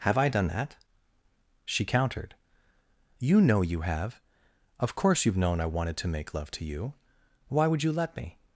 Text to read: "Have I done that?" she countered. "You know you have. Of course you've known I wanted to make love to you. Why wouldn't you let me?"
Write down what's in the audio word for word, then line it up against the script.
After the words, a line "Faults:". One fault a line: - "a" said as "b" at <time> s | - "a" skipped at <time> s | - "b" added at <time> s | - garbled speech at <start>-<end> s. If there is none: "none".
"Have I done that?" she countered. "You know you have. Of course you've known I wanted to make love to you. Why would you let me?"
Faults:
- "wouldn't" said as "would" at 7.7 s